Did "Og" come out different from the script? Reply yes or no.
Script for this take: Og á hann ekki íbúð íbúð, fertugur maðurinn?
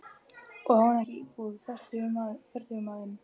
no